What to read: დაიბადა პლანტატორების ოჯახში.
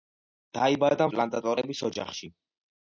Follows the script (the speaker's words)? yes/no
yes